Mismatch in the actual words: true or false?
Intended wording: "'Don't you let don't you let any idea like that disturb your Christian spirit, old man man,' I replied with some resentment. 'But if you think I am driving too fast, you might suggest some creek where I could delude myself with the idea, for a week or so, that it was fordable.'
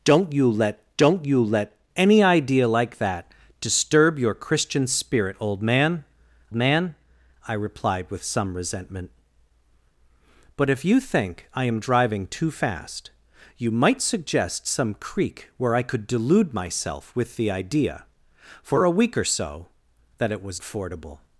false